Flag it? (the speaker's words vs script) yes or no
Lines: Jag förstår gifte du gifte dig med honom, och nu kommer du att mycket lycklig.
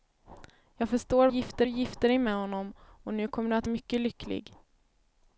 no